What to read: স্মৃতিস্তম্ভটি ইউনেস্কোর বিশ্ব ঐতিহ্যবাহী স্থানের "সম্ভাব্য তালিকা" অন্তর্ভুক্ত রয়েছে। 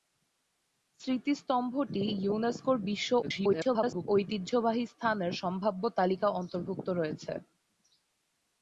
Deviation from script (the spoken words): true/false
true